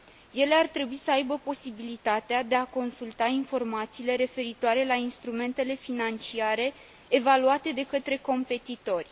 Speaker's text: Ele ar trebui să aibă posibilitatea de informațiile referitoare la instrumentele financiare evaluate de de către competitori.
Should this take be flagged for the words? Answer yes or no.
yes